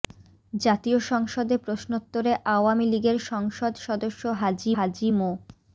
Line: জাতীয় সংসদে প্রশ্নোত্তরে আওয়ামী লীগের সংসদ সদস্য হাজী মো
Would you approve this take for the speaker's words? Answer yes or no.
no